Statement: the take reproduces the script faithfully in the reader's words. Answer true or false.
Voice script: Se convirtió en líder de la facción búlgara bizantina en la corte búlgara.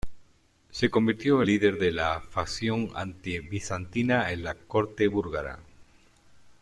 false